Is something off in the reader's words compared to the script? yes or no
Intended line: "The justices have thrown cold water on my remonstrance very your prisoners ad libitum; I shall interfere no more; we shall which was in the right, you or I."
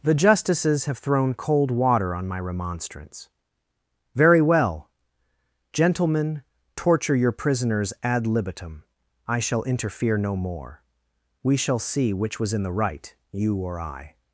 yes